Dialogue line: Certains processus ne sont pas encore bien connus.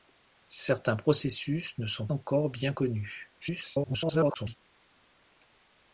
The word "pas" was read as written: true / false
false